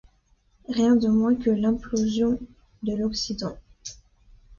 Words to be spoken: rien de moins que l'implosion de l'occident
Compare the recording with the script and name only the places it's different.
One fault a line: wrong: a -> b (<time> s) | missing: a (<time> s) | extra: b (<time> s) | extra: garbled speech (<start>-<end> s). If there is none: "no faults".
no faults